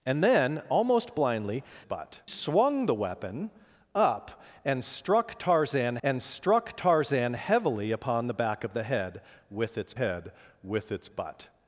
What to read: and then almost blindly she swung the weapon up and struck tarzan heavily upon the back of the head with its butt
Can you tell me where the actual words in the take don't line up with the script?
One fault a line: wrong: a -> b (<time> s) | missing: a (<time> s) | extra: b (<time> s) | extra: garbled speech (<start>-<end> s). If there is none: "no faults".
wrong: she -> butt (1.8 s)
extra: and struck tarzan (6.0 s)
extra: head with its (9.9 s)